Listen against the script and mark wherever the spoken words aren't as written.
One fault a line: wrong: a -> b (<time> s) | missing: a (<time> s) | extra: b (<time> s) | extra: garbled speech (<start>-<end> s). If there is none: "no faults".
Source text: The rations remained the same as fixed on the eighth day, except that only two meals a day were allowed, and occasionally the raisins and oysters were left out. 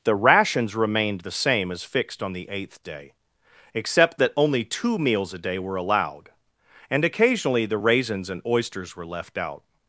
no faults